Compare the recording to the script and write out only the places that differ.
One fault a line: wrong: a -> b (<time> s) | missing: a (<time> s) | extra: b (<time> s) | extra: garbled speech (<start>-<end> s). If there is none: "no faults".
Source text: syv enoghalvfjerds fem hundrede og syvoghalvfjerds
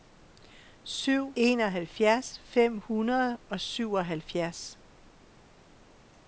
no faults